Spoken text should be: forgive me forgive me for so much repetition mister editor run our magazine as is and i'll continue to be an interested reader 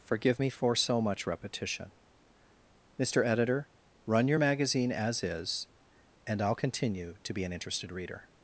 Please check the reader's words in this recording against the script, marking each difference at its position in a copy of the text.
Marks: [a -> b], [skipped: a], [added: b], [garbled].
forgive me [skipped: forgive me] for so much repetition mister editor run [our -> your] magazine as is and i'll continue to be an interested reader